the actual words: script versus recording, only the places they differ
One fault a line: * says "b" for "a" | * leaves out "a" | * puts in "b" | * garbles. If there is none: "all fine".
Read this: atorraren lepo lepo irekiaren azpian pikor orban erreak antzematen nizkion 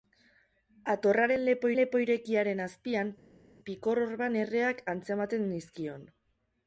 all fine